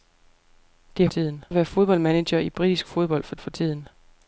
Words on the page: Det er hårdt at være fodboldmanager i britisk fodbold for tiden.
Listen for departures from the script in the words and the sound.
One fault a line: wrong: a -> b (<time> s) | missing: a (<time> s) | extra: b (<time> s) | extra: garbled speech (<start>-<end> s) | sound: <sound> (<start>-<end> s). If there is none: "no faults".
wrong: hårdt -> tiden (1.1 s)
extra: for (3.4 s)